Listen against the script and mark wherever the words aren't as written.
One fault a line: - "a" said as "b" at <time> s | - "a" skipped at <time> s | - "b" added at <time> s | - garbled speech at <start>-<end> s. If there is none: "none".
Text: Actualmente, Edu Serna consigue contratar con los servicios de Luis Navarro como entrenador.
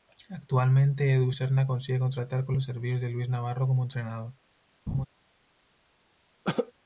none